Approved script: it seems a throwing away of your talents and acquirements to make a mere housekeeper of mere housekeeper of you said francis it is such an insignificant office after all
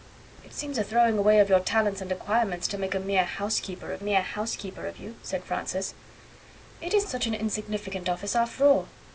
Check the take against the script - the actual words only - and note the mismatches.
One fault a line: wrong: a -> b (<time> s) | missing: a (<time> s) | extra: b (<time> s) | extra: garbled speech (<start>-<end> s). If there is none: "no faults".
no faults